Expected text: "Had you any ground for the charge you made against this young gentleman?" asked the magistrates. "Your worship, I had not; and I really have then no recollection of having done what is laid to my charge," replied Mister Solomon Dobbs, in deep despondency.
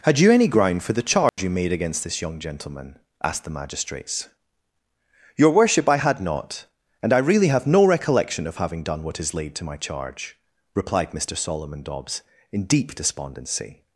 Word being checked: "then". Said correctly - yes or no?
no